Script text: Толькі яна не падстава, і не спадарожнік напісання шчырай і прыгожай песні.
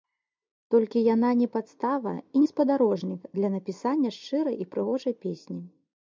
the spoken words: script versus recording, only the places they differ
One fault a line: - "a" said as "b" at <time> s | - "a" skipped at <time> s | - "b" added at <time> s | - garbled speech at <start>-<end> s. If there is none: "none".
- "для" added at 3.4 s